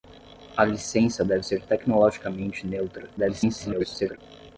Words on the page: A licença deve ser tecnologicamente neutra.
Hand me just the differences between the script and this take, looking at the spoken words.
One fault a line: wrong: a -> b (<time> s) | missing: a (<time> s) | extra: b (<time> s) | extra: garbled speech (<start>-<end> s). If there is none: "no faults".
extra: garbled speech (3.2-4.2 s)